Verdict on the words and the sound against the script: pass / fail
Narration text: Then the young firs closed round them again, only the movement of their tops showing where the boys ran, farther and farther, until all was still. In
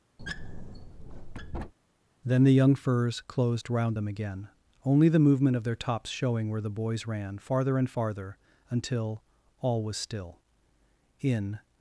fail